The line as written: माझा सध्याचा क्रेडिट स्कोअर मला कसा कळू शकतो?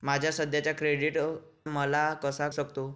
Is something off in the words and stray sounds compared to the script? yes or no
yes